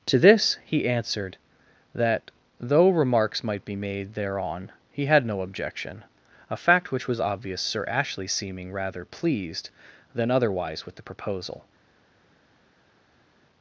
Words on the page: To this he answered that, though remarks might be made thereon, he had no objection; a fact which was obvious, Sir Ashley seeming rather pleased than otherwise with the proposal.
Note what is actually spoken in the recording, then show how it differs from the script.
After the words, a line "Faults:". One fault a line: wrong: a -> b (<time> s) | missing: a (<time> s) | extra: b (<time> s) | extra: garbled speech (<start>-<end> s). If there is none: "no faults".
To this he answered that, though remarks might be made thereon, he had no objection; a fact which was obvious, Sir Ashley seeming rather pleased than otherwise with the proposal.
Faults:
no faults